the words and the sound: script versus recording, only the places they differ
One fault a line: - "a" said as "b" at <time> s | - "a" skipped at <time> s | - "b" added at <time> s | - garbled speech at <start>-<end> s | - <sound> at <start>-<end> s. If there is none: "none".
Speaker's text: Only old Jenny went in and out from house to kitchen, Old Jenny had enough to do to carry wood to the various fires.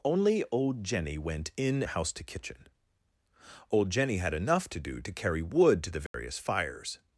- "and out from" skipped at 1.8 s
- dropout at 6.1-6.1 s